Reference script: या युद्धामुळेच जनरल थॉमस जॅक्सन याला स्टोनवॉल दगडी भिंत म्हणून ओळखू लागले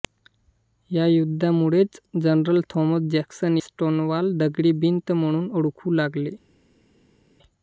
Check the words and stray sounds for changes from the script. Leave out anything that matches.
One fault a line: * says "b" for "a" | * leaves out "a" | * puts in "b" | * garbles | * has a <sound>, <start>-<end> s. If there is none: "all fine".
* leaves out "याला"